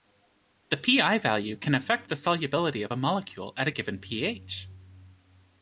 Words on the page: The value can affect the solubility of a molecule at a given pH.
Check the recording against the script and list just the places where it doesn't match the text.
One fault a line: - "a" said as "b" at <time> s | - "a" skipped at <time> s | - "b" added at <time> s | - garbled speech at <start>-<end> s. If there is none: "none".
- "pI" added at 0.8 s